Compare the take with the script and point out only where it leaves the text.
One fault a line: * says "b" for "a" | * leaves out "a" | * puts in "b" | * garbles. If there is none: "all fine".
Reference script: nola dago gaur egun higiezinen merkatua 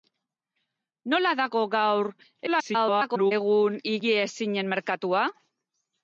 * garbles